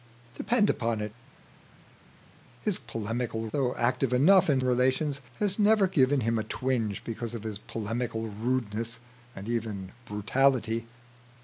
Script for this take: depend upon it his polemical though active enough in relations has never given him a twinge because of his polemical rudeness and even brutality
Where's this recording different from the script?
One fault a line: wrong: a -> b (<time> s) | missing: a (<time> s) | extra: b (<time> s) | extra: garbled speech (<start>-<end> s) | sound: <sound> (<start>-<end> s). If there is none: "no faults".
no faults